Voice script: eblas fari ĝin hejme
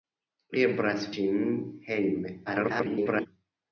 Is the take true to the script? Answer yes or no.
no